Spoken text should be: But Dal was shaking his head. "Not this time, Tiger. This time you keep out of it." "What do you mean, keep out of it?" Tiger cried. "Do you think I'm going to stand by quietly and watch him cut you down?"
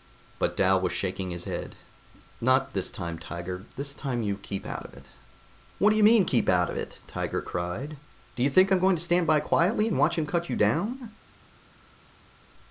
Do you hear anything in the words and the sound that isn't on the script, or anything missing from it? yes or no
no